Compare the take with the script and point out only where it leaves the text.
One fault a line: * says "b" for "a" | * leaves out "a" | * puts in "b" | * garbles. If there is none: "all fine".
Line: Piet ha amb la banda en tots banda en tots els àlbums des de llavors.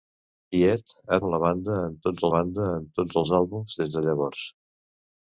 all fine